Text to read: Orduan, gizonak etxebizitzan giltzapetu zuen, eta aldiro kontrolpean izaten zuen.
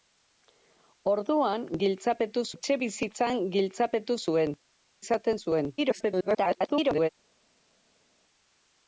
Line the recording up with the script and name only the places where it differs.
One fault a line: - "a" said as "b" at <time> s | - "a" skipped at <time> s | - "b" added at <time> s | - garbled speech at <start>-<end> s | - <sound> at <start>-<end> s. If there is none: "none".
- "gizonak" said as "giltzapetu" at 1.8 s
- "eta aldiro kontrolpean" skipped at 4.5 s
- garbled speech at 5.8-7.1 s